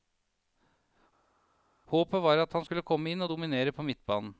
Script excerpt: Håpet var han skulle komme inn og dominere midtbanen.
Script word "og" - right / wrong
right